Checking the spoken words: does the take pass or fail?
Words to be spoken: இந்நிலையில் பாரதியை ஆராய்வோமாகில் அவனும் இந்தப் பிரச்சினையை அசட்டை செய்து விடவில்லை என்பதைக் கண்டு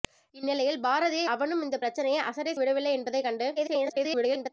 fail